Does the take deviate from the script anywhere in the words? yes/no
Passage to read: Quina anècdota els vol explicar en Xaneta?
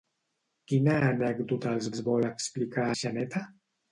yes